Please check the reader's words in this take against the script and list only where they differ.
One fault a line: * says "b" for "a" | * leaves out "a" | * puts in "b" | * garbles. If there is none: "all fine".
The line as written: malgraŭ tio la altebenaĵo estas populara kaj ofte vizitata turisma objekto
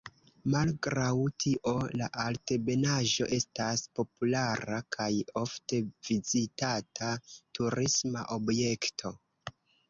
all fine